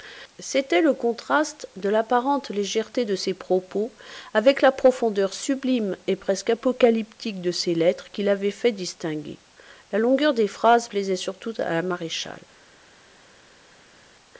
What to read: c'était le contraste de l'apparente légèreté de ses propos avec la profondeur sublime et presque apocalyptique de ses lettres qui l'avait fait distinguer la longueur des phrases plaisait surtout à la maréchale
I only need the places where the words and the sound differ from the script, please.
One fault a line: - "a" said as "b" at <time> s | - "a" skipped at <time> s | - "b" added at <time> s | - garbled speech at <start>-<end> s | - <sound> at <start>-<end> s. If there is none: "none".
none